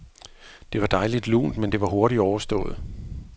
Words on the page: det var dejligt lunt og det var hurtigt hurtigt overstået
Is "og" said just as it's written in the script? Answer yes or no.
no